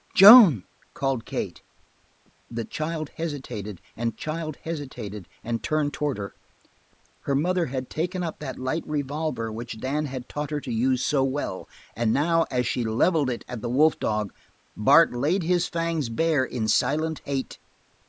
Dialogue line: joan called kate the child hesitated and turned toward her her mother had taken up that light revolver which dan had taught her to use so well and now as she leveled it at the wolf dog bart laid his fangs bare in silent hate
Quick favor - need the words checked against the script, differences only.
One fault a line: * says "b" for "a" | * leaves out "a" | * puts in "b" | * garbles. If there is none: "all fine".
* puts in "child hesitated and"